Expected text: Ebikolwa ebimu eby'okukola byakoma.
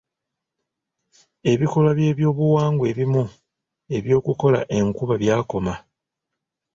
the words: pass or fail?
fail